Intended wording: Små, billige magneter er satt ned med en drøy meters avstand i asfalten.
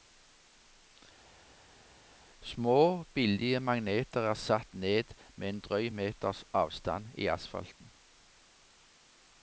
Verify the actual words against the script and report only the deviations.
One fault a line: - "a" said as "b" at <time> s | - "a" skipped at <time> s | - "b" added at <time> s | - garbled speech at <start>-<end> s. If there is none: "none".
none